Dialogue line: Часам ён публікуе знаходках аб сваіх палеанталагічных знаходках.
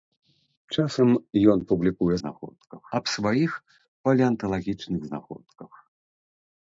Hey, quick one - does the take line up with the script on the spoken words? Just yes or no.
yes